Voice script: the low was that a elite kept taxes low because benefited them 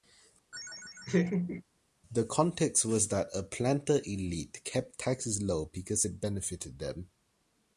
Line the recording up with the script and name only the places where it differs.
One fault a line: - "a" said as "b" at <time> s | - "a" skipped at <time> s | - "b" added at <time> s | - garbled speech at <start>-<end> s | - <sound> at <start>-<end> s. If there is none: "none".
- laugh at 0.5-1.6 s
- "low" said as "context" at 2.2 s
- "planter" added at 3.4 s
- "it" added at 6.0 s